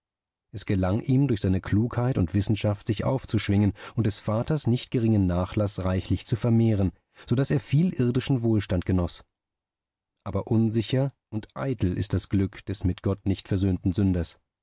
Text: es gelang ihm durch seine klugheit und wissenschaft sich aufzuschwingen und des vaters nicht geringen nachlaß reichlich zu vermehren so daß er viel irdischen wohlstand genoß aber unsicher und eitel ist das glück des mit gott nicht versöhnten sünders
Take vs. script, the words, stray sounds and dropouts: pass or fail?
pass